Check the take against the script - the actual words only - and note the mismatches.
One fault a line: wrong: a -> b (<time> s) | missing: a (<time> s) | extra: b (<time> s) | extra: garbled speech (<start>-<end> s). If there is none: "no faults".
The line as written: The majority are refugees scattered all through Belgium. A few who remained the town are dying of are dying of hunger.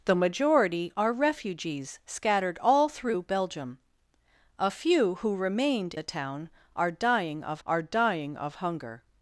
no faults